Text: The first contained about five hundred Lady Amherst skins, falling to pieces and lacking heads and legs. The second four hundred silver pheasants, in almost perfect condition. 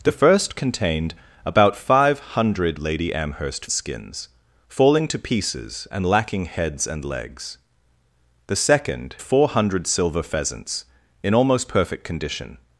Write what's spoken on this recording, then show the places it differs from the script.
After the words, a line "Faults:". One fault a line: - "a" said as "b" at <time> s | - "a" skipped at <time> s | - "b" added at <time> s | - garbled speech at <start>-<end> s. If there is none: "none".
The first contained about five hundred Lady Amherst skins, falling to pieces and lacking heads and legs. The second four hundred silver pheasants, in almost perfect condition.
Faults:
none